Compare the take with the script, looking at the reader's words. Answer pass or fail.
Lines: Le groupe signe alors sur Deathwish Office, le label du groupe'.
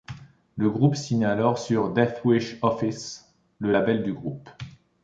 pass